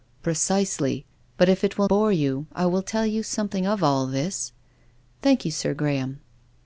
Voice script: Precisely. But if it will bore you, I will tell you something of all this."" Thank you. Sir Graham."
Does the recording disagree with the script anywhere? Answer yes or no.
no